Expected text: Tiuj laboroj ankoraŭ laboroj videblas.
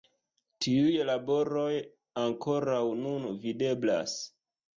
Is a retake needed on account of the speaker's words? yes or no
yes